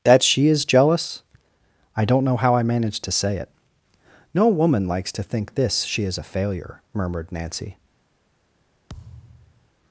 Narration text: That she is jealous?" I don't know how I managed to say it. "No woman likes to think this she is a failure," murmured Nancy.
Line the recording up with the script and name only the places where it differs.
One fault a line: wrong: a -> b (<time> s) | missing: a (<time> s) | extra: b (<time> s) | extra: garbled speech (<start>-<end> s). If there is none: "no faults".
no faults